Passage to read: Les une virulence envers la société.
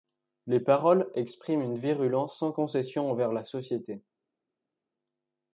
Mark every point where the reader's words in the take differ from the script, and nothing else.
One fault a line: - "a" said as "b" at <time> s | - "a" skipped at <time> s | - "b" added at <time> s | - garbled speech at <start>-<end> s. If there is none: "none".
- "paroles expriment" added at 0.6 s
- "sans concession" added at 2.4 s